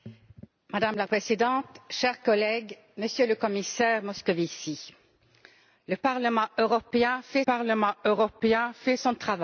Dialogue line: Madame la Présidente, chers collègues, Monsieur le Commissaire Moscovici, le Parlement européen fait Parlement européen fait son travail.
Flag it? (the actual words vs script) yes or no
no